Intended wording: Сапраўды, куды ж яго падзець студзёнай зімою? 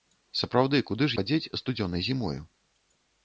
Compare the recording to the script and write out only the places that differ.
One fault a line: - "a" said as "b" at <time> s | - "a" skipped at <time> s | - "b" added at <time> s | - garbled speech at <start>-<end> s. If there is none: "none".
- "яго" skipped at 1.2 s